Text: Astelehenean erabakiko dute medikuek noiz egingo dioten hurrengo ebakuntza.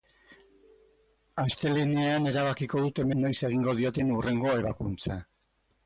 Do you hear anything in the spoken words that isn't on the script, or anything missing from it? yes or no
yes